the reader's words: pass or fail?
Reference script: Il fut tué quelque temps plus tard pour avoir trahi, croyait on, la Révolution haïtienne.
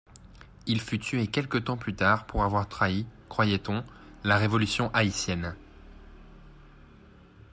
pass